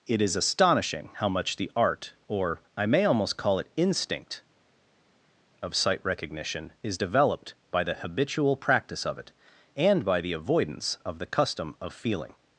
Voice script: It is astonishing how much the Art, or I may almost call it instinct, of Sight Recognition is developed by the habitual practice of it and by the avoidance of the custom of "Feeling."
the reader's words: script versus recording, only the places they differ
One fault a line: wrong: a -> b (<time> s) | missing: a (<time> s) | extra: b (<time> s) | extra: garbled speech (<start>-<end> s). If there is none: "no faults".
no faults